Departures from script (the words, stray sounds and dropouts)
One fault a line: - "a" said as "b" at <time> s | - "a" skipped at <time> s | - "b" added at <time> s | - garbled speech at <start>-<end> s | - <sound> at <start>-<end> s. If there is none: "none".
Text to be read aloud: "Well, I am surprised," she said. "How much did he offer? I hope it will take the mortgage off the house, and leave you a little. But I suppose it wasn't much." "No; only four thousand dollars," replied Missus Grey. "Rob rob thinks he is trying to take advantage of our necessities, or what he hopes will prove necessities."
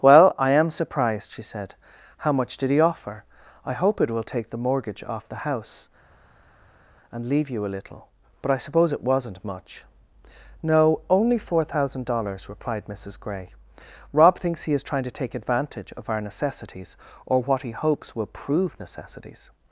- "rob" skipped at 14.4 s